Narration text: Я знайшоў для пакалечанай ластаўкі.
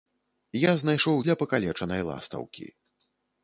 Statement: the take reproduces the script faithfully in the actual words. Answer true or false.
true